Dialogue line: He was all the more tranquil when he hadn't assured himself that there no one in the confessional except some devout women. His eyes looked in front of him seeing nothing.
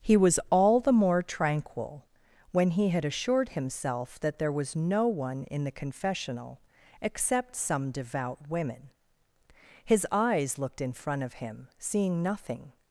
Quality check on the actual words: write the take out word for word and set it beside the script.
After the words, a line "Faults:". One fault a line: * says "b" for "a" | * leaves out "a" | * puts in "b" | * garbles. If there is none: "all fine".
He was all the more tranquil when he had assured himself that there was no one in the confessional except some devout women. His eyes looked in front of him seeing nothing.
Faults:
* says "had" for "hadn't"
* puts in "was"